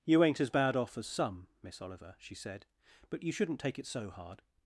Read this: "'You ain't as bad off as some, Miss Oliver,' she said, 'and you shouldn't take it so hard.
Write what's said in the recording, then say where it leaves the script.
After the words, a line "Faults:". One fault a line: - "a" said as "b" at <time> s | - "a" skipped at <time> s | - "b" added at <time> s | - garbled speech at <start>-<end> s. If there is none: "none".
"'You ain't as bad off as some, Miss Oliver,' she said, 'but you shouldn't take it so hard.
Faults:
- "and" said as "but" at 3.1 s